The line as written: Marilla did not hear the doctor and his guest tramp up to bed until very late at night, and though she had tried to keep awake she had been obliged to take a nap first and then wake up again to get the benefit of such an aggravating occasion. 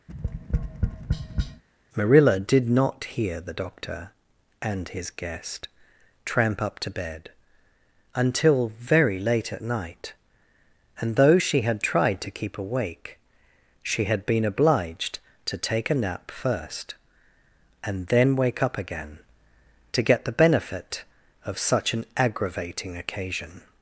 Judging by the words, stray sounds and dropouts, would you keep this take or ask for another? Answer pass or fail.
fail